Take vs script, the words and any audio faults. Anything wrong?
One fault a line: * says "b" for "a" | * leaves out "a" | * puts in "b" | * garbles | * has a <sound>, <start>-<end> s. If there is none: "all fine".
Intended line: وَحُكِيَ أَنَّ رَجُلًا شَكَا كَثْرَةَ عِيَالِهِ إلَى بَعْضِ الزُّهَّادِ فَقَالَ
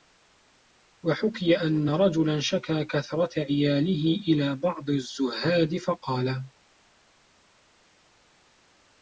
all fine